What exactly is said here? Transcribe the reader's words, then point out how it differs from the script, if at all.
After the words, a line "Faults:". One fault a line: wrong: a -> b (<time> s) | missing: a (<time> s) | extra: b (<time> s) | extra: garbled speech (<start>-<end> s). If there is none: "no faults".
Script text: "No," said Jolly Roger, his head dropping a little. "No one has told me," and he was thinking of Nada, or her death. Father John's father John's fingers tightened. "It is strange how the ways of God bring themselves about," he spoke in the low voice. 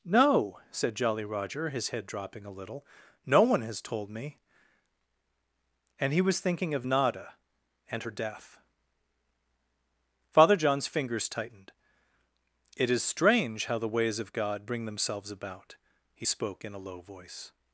"No," said Jolly Roger, his head dropping a little. "No one has told me," and he was thinking of Nada, and her death. Father John's fingers tightened. "It is strange how the ways of God bring themselves about," he spoke in a low voice.
Faults:
wrong: or -> and (7.9 s)
missing: father John's (10.9 s)
wrong: the -> a (16.7 s)